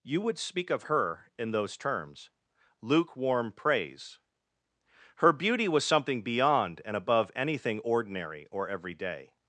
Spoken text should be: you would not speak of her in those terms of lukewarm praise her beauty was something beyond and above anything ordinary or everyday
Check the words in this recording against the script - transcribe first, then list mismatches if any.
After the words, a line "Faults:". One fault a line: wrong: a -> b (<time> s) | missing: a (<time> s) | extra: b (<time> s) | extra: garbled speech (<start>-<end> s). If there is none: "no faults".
you would speak of her in those terms lukewarm praise her beauty was something beyond and above anything ordinary or everyday
Faults:
missing: not (0.4 s)
missing: of (2.3 s)